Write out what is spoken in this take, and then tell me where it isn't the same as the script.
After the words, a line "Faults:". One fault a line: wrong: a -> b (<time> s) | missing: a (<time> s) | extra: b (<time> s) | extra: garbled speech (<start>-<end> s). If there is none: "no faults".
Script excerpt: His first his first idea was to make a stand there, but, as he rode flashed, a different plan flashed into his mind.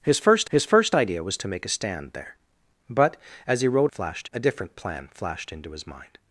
His first his first idea was to make a stand there, but, as he rode flashed, a different plan flashed into his mind.
Faults:
no faults